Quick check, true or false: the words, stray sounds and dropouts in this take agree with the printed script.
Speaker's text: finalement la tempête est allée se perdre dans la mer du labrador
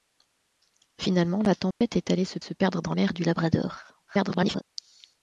false